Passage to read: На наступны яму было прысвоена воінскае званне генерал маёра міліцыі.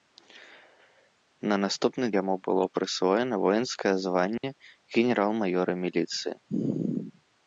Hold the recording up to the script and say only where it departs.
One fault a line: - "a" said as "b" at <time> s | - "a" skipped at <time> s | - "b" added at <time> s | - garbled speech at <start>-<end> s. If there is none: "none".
none